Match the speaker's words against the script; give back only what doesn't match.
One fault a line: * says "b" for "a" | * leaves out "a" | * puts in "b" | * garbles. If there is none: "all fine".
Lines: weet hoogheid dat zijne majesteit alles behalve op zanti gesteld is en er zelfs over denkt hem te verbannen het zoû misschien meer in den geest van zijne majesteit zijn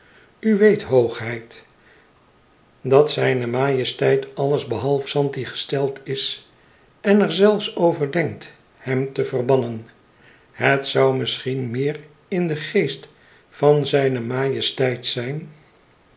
* leaves out "op"